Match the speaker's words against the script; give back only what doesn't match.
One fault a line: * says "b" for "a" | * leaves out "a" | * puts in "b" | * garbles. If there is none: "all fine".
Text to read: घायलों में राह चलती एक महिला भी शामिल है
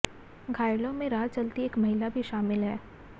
all fine